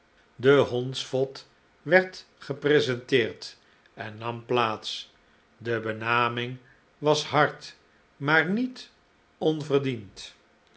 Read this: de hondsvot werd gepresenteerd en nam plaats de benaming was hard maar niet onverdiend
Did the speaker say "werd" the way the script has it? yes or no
yes